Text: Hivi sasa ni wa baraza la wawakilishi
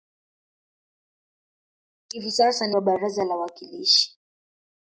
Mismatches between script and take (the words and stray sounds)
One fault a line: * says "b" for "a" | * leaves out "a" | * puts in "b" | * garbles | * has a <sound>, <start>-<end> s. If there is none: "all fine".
all fine